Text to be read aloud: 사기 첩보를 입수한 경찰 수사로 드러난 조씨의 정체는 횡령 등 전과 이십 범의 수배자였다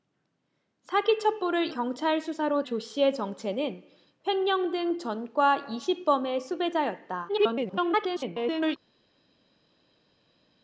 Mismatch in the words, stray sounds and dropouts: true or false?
true